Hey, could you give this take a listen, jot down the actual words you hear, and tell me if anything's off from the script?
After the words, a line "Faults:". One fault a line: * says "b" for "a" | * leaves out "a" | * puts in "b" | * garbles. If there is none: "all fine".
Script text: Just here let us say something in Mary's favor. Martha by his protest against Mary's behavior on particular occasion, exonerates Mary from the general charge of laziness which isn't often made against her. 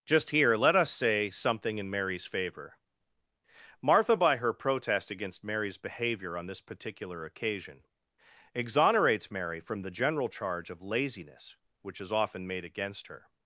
Just here let us say something in Mary's favor. Martha by her protest against Mary's behavior on this particular occasion, exonerates Mary from the general charge of laziness which is often made against her.
Faults:
* says "her" for "his"
* puts in "this"
* says "is" for "isn't"